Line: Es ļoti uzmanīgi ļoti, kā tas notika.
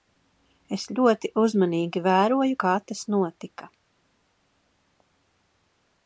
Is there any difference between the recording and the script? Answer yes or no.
yes